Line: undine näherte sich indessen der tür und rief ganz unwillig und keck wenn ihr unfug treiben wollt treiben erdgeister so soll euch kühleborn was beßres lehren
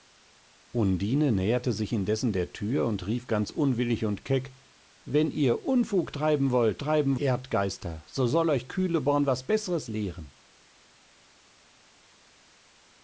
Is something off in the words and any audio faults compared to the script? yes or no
no